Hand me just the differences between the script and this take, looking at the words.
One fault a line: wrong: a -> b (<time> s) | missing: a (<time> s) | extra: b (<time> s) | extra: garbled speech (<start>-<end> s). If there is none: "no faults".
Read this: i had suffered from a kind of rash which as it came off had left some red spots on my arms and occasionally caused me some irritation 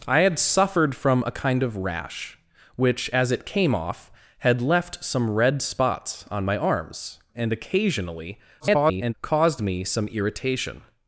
extra: garbled speech (8.6-9.1 s)